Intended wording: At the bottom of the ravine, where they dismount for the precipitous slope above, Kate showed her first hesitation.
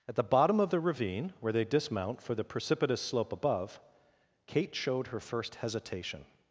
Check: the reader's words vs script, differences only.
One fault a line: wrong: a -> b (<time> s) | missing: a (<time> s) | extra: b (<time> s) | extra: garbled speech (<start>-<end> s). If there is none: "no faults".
no faults